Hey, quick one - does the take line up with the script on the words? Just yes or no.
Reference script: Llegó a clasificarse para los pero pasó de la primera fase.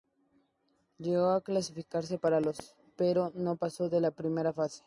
no